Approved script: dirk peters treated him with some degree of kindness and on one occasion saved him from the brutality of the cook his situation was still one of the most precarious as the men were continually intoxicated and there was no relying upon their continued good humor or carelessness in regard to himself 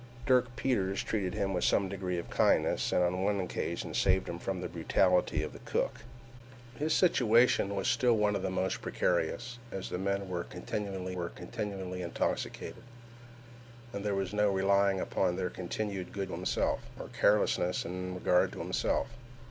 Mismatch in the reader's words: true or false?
true